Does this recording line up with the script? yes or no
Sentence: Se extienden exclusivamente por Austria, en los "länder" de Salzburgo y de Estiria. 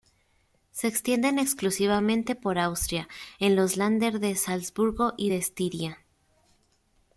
yes